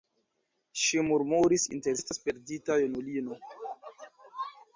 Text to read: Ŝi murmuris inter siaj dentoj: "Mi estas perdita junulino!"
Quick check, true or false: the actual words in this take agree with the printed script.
false